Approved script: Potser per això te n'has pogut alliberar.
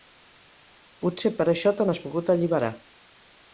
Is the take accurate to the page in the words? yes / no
yes